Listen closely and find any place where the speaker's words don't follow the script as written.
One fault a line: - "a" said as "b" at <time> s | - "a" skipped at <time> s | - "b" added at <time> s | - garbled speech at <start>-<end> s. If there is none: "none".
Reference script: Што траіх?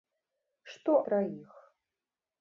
none